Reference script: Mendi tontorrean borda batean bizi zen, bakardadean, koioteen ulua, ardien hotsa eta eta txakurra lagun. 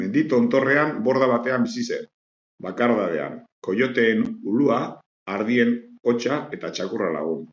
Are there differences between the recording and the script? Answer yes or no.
yes